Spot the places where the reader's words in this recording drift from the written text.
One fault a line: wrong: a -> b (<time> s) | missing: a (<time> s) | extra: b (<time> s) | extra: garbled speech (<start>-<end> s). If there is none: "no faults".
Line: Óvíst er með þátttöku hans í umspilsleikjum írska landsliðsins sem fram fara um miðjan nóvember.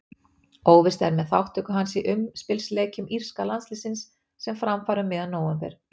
no faults